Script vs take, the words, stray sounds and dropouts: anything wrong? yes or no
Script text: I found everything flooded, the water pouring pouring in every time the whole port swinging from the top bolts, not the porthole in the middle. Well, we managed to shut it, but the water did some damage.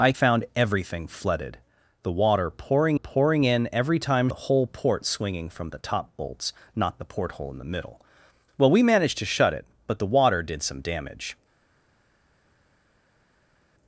no